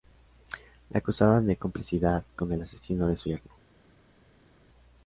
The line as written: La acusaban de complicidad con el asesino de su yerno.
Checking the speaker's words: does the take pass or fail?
pass